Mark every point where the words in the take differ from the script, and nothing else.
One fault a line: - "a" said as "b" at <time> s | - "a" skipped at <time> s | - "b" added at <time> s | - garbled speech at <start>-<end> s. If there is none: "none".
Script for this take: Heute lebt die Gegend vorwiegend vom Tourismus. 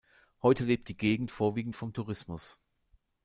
none